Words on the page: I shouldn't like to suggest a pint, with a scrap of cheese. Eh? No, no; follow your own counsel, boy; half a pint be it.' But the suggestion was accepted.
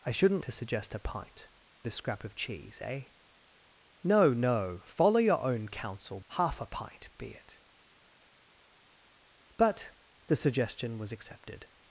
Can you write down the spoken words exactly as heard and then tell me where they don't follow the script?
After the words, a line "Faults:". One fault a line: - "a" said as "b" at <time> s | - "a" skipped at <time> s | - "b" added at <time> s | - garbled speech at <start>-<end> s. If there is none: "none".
I shouldn't to suggest a pint, a scrap of cheese. Eh? No, no; follow your own counsel; half a pint be it.' But the suggestion was accepted.
Faults:
- "like" skipped at 0.4 s
- "with" skipped at 1.5 s
- "boy" skipped at 6.2 s